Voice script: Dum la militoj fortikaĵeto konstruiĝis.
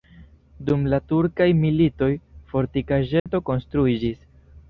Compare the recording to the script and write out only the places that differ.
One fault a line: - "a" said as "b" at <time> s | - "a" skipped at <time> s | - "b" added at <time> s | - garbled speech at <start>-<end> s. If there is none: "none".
- "turkaj" added at 1.1 s